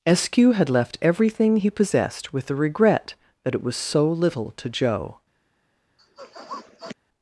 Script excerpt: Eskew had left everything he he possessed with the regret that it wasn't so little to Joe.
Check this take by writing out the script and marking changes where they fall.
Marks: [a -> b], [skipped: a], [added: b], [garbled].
Eskew had left everything he [skipped: he] possessed with the regret that it [wasn't -> was] so little to Joe.